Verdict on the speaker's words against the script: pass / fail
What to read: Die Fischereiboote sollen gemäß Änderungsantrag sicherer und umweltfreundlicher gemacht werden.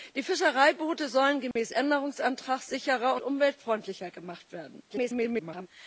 fail